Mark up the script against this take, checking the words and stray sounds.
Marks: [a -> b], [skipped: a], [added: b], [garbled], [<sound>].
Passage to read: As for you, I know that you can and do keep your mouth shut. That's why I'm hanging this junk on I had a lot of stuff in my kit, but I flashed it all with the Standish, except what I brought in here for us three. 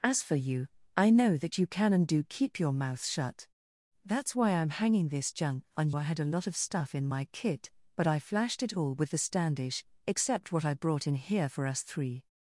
As for you, I know that you can and do keep your mouth shut. That's why I'm hanging this junk on I had a lot of stuff in my kit, but I flashed it all with the Standish, except what I brought in here for us three.